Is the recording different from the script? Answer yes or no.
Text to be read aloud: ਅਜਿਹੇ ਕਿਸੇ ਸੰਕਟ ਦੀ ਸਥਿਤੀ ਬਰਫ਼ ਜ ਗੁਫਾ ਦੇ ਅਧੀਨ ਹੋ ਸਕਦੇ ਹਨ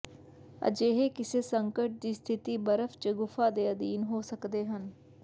no